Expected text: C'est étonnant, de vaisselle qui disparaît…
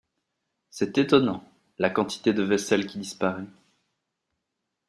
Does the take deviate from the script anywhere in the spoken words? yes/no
yes